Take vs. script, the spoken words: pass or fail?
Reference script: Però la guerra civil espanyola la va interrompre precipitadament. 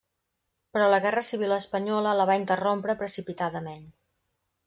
pass